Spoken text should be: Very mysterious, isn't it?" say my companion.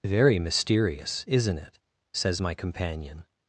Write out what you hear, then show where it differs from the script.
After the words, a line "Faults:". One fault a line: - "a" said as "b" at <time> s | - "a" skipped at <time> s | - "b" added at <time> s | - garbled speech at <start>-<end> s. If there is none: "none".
Very mysterious, isn't it?" says my companion.
Faults:
- "say" said as "says" at 2.1 s